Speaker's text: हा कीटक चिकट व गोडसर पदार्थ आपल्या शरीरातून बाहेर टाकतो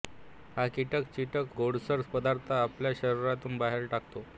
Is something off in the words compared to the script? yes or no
yes